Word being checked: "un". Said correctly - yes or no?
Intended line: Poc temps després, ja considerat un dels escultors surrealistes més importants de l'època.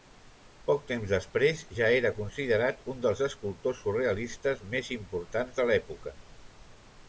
yes